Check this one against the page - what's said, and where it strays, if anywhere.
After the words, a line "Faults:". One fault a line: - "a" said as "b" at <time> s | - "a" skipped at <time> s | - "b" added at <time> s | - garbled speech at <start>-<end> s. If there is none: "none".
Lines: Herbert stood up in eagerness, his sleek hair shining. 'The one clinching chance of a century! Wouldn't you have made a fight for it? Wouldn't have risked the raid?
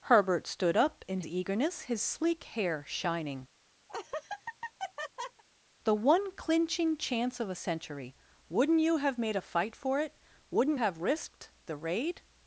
Herbert stood up in eagerness, his sleek hair shining. 'The one clinching chance of a century! Wouldn't you have made a fight for it? Wouldn't have risked the raid?
Faults:
none